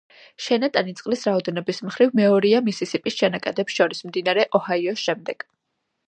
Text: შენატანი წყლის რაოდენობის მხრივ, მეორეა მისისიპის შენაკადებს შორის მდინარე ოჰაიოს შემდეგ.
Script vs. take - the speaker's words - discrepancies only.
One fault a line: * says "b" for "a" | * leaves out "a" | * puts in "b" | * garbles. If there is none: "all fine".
all fine